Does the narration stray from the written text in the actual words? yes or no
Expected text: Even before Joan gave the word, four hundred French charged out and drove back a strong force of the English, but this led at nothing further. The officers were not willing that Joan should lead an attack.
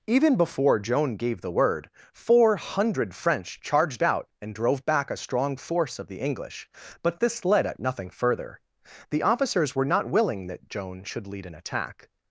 no